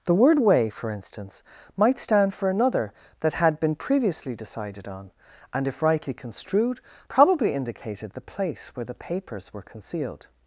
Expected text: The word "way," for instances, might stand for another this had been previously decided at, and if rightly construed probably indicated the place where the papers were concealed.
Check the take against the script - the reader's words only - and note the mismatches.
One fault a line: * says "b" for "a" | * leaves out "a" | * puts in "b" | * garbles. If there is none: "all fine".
* says "instance" for "instances"
* says "that" for "this"
* says "on" for "at"